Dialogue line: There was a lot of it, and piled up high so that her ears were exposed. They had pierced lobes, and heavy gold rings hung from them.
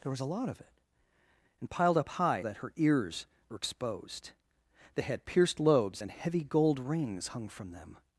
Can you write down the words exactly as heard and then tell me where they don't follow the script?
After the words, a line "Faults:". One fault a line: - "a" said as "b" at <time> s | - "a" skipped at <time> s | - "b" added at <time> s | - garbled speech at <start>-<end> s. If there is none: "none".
There was a lot of it, and piled up high that her ears were exposed. They had pierced lobes, and heavy gold rings hung from them.
Faults:
- "so" skipped at 2.4 s